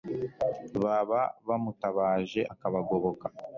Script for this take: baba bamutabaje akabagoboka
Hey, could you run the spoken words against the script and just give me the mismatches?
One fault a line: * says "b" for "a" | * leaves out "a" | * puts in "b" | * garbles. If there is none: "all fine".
all fine